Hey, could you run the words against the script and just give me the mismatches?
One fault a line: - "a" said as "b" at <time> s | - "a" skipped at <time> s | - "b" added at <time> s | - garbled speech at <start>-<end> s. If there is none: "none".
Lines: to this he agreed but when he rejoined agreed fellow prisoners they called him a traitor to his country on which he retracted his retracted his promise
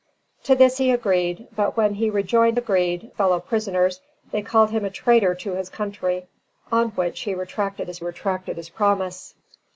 none